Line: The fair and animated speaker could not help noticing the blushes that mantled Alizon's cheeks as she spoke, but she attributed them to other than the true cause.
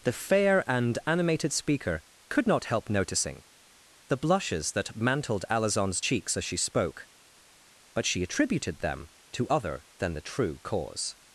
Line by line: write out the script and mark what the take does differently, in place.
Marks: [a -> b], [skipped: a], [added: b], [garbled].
The fair and animated speaker could not help noticing the blushes that mantled Alizon's cheeks as she spoke, but she attributed them to other than the true cause.